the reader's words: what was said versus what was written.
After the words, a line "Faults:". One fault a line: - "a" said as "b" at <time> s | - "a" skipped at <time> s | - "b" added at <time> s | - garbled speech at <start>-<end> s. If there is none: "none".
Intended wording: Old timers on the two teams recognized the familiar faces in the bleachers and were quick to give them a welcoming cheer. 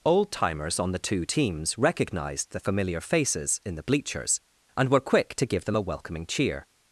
Old timers on the two teams recognized the familiar faces in the bleachers and were quick to give them a welcoming cheer.
Faults:
none